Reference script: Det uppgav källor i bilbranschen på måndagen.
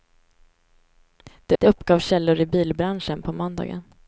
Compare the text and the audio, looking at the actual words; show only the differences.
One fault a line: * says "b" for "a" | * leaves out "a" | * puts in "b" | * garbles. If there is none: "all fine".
* puts in "det"